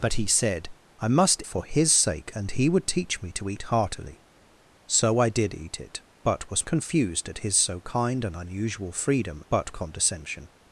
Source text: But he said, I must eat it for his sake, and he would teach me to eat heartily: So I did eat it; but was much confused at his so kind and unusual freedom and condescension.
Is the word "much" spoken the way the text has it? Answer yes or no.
no